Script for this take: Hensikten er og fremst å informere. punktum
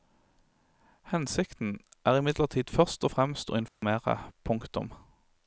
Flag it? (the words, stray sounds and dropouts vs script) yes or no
yes